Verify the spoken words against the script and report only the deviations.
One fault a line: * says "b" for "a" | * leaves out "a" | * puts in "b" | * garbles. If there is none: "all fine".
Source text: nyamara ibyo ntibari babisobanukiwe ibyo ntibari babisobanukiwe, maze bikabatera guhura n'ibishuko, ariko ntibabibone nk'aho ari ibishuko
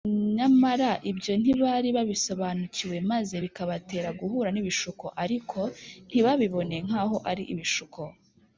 * leaves out "ibyo ntibari babisobanukiwe"